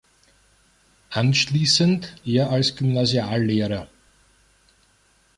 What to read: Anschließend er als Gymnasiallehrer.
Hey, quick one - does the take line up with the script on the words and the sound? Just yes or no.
yes